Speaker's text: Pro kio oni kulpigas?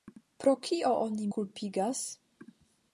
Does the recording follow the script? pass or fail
pass